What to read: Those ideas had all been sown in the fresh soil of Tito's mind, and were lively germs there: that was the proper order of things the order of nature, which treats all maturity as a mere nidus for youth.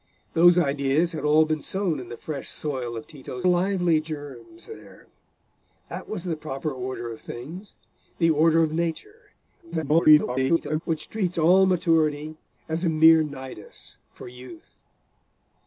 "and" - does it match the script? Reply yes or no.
no